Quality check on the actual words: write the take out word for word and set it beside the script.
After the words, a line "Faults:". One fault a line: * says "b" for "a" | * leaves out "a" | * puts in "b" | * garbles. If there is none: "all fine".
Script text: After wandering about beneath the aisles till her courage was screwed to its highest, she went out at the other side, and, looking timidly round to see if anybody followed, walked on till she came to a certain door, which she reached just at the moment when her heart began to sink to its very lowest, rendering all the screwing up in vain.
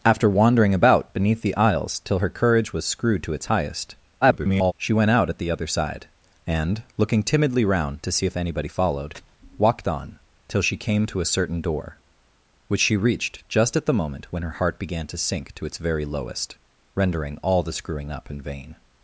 After wandering about beneath the aisles till her courage was screwed to its highest, [garbled] she went out at the other side, and, looking timidly round to see if anybody followed, walked on till she came to a certain door, which she reached just at the moment when her heart began to sink to its very lowest, rendering all the screwing up in vain.
Faults:
* garbles